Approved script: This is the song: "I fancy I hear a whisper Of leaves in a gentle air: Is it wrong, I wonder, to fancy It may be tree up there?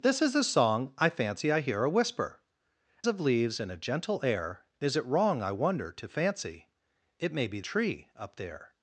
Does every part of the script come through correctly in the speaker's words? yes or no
yes